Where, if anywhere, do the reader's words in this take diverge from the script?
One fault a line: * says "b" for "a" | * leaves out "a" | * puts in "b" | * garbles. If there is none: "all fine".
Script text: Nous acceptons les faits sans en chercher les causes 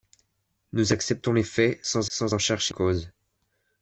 * puts in "sans"
* leaves out "les"